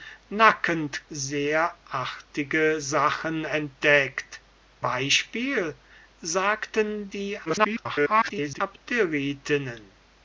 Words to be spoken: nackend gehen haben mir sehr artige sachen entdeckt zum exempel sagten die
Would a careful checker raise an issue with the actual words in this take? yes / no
yes